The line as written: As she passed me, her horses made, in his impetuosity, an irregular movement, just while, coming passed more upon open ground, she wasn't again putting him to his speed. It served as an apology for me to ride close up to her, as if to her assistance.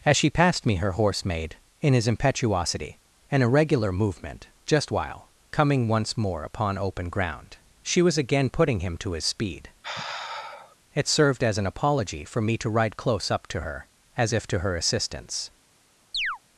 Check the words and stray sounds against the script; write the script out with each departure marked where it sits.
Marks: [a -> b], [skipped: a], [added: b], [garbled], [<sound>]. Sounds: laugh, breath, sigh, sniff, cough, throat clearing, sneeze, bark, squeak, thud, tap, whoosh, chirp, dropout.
As she passed me, her [horses -> horse] made, in his impetuosity, an irregular movement, just while, coming [passed -> once] more upon open ground, she [wasn't -> was] again putting him to his speed. [sigh] It served as an apology for me to ride close up to her, as if to her assistance. [chirp]